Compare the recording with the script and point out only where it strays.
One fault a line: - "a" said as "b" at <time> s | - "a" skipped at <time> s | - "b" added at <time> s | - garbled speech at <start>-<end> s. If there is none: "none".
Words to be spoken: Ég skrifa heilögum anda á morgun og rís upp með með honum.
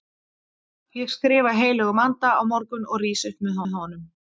none